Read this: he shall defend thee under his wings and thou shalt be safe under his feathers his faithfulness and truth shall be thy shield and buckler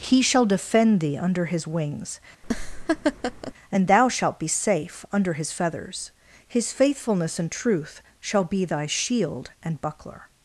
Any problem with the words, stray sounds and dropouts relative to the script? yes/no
yes